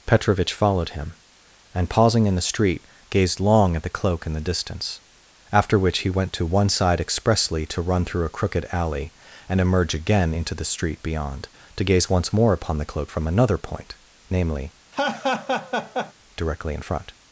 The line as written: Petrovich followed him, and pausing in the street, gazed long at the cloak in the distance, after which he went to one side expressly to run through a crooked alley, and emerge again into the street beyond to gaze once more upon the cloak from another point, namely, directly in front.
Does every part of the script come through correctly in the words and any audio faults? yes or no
no